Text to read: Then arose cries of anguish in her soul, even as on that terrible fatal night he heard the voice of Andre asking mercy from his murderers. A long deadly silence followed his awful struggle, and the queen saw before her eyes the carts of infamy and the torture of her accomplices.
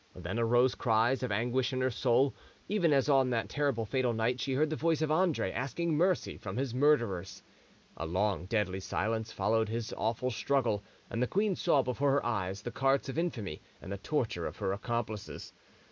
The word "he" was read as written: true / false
false